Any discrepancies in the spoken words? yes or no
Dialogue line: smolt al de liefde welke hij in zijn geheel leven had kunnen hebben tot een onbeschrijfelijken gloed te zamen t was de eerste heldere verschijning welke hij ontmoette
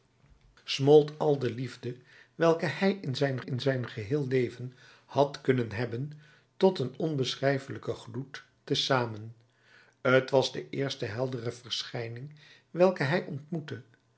yes